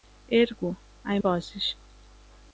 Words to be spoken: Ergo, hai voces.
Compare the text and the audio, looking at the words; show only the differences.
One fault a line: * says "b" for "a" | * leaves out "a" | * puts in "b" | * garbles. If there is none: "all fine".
all fine